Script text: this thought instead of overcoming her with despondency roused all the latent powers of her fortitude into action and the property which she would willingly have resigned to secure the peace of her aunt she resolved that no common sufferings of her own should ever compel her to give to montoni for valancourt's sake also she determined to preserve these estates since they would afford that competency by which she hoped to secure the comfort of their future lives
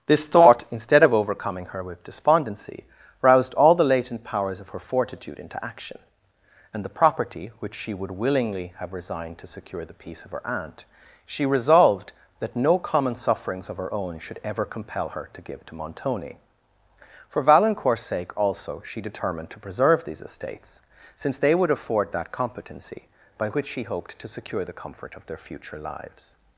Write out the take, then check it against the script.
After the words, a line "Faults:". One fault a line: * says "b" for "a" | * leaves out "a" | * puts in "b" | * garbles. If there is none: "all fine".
this thought instead of overcoming her with despondency roused all the latent powers of her fortitude into action and the property which she would willingly have resigned to secure the peace of her aunt she resolved that no common sufferings of her own should ever compel her to give to montoni for valancourt's sake also she determined to preserve these estates since they would afford that competency by which she hoped to secure the comfort of their future lives
Faults:
all fine